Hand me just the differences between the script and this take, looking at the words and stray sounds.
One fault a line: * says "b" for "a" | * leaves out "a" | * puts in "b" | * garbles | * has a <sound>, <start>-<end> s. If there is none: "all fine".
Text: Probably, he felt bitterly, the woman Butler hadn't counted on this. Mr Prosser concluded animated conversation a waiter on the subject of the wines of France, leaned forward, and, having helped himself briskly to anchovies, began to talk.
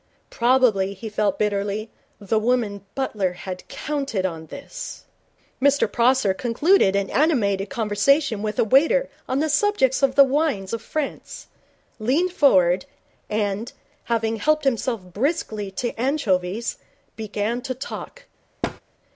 * says "had" for "hadn't"
* puts in "an"
* puts in "with"
* has a thud, 18.6-18.8 s